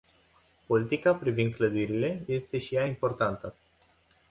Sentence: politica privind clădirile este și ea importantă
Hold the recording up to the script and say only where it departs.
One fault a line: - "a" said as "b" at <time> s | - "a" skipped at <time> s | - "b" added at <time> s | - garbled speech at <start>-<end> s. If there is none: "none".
none